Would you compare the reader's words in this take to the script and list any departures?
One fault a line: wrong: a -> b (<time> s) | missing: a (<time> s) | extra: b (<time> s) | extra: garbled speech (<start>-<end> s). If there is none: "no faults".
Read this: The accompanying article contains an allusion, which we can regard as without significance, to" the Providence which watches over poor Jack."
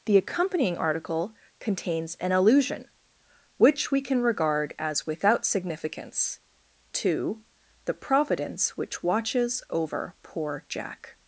no faults